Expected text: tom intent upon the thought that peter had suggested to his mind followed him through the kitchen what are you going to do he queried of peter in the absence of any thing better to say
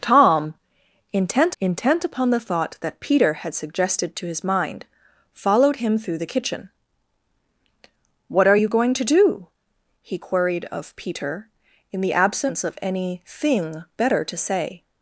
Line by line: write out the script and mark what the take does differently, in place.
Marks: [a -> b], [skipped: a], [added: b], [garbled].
tom intent [added: intent] upon the thought that peter had suggested to his mind followed him through the kitchen what are you going to do he queried of peter in the absence of any thing better to say